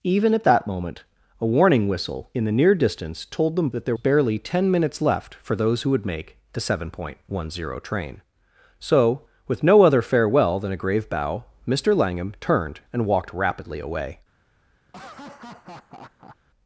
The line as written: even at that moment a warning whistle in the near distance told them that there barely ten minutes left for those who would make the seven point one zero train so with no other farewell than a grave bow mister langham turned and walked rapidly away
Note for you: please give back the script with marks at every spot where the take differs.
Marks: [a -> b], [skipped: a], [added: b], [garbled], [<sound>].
even at that moment a warning whistle in the near distance told them that there barely ten minutes left for those who would make the seven point one zero train so with no other farewell than a grave bow mister langham turned and walked rapidly away [laugh]